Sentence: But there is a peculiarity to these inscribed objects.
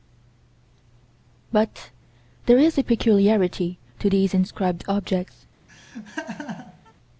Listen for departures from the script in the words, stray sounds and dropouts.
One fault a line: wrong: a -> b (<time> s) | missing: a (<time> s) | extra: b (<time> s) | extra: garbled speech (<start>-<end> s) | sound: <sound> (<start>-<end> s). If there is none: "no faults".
sound: laugh (5.7-6.9 s)